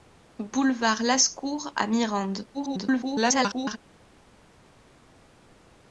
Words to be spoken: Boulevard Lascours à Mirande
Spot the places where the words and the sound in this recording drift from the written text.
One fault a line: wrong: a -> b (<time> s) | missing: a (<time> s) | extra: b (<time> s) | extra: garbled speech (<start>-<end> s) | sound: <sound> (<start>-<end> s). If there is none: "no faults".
extra: garbled speech (2.5-3.8 s)